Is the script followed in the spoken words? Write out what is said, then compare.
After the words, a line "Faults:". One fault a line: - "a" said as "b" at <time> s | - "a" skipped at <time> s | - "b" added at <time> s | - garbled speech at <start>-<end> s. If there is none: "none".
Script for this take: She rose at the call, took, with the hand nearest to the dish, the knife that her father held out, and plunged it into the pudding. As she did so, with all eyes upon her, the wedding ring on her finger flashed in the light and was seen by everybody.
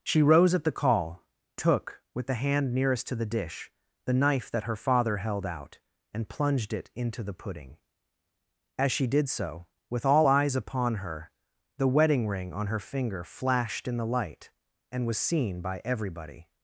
She rose at the call, took, with the hand nearest to the dish, the knife that her father held out, and plunged it into the pudding. As she did so, with all eyes upon her, the wedding ring on her finger flashed in the light and was seen by everybody.
Faults:
none